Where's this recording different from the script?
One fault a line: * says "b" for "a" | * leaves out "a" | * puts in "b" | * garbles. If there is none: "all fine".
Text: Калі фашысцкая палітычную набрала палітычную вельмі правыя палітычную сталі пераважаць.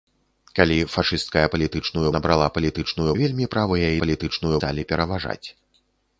all fine